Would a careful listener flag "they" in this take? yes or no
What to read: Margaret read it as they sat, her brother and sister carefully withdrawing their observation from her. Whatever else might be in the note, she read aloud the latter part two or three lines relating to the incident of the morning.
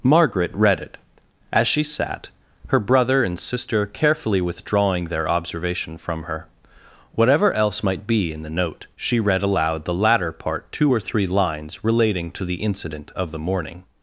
yes